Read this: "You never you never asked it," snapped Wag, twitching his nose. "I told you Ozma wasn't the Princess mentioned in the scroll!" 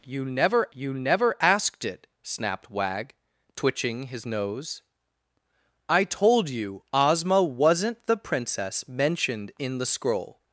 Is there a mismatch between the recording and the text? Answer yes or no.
no